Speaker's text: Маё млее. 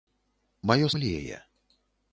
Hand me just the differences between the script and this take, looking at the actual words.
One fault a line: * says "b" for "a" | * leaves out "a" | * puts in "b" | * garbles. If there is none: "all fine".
all fine